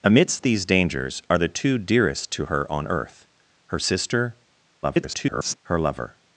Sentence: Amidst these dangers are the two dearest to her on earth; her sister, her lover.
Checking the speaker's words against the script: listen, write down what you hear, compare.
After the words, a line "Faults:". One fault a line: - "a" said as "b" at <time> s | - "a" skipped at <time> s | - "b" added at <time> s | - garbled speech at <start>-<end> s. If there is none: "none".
Amidst these dangers are the two dearest to her on earth; her sister, [garbled] her lover.
Faults:
- garbled speech at 4.8-5.6 s